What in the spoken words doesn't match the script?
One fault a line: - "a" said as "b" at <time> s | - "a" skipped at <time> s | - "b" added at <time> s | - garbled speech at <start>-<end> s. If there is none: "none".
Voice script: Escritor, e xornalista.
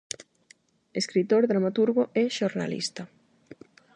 - "dramaturgo" added at 1.5 s